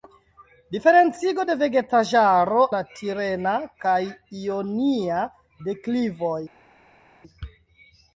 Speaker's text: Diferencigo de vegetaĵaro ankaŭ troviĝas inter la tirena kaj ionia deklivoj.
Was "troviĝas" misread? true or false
true